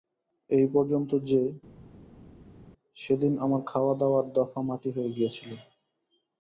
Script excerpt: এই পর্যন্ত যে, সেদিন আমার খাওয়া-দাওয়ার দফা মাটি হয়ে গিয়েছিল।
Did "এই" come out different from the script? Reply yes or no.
no